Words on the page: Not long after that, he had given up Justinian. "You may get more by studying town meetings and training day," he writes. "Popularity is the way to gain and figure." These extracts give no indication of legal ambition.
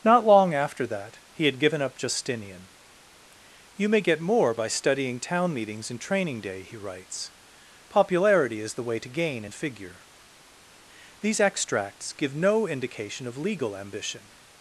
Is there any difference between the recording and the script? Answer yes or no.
no